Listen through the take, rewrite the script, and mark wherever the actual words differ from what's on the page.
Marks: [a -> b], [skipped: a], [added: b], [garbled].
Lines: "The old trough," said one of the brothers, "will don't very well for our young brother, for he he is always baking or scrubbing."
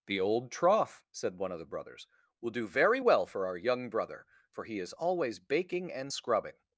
"The old trough," said one of the brothers, "will [don't -> do] very well for our young brother, for he [skipped: he] is always baking [or -> and] scrubbing."